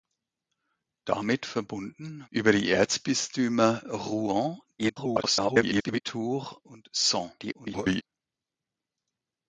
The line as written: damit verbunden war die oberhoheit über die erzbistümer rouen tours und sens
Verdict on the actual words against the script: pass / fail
fail